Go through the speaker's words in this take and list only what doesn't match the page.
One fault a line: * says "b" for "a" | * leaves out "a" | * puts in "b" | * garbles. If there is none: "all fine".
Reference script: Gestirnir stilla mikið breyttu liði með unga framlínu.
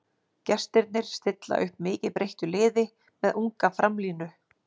* puts in "upp"